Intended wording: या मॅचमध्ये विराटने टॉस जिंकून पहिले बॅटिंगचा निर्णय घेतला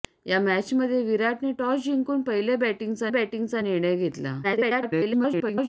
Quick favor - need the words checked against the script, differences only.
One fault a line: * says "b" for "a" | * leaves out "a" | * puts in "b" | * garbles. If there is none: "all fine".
* puts in "बॅटिंगचा"
* garbles